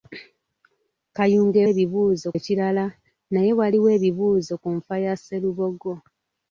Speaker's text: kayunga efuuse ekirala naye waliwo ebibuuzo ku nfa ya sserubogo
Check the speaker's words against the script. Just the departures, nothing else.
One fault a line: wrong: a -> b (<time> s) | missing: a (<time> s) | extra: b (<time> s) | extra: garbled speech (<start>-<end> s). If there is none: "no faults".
wrong: efuuse -> ebibuuzo (1.7 s)